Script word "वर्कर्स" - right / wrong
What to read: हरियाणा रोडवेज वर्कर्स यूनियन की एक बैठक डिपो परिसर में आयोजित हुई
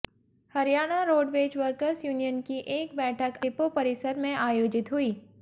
right